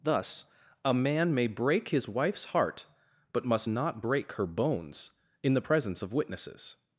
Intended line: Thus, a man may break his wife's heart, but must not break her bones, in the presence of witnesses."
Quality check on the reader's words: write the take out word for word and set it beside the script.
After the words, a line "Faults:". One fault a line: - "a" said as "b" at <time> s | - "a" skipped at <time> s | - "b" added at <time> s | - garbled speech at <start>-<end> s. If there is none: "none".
Thus, a man may break his wife's heart, but must not break her bones, in the presence of witnesses."
Faults:
none